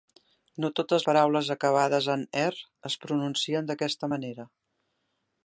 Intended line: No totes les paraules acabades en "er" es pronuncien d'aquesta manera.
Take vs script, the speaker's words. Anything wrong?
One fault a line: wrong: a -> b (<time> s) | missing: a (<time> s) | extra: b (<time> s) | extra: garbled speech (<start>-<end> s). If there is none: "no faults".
missing: les (1.0 s)